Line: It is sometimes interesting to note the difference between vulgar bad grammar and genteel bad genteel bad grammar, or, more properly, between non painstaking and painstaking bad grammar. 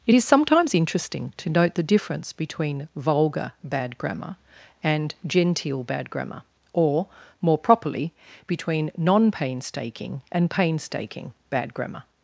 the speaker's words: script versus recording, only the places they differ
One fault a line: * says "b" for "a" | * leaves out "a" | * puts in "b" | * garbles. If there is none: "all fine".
* leaves out "genteel bad"